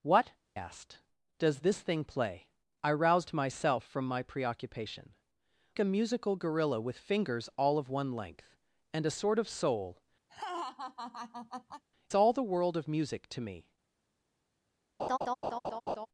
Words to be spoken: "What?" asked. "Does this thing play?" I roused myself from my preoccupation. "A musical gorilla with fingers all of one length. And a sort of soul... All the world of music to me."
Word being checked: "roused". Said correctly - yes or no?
yes